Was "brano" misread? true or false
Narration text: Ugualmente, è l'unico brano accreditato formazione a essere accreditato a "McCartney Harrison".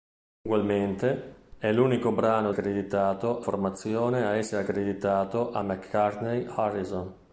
false